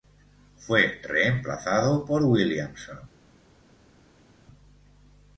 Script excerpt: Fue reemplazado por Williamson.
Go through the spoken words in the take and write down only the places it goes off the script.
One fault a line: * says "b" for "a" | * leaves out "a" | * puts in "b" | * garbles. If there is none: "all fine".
all fine